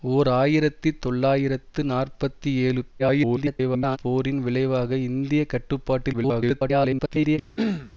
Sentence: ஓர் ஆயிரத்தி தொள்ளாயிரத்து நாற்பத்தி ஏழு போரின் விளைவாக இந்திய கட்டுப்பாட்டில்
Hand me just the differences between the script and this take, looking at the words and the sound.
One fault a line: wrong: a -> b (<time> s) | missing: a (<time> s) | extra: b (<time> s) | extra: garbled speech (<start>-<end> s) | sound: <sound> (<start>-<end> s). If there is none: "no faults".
extra: garbled speech (3.0-4.0 s)
extra: garbled speech (6.1-7.4 s)
sound: throat clearing (7.6-7.9 s)